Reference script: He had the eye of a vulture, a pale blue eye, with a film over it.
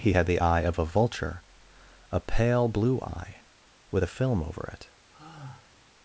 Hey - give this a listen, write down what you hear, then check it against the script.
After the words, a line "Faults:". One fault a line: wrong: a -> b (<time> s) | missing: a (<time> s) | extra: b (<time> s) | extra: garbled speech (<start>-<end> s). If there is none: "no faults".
He had the eye of a vulture, a pale blue eye, with a film over it.
Faults:
no faults